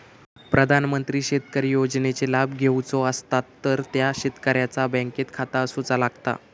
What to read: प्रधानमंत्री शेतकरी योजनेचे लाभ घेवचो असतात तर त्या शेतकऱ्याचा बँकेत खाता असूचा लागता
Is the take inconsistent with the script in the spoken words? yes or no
no